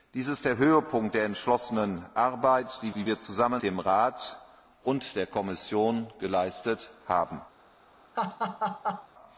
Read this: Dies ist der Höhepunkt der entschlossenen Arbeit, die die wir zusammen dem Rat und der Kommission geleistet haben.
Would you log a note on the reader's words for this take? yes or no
no